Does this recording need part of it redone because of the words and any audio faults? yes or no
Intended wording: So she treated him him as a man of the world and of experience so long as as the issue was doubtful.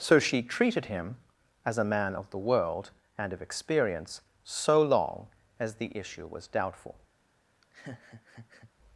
yes